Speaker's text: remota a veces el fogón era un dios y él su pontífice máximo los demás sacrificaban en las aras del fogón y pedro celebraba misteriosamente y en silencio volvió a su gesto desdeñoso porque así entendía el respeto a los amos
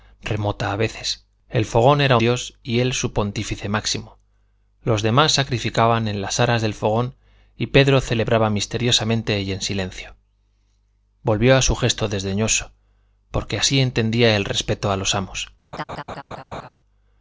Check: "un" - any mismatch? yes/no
yes